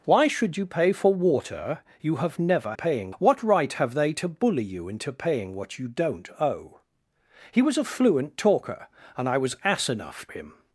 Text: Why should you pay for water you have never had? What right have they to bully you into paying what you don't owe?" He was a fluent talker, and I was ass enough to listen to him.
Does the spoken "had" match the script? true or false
false